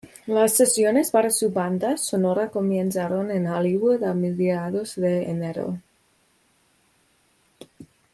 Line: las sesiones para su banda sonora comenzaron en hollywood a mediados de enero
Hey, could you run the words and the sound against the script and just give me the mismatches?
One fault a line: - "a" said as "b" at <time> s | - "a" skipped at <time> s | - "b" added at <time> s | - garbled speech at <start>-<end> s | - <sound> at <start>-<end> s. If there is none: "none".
none